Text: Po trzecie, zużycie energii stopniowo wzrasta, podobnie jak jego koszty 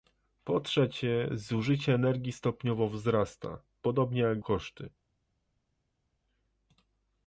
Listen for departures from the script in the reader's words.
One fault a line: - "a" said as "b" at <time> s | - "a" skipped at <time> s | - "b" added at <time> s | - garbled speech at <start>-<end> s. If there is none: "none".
- "jego" skipped at 4.4 s